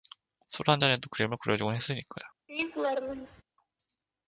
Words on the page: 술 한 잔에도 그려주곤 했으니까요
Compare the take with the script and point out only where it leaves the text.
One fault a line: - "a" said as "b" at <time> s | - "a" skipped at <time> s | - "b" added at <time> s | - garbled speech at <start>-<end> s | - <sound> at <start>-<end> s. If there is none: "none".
- "그림을" added at 1.1 s
- laugh at 2.5-3.4 s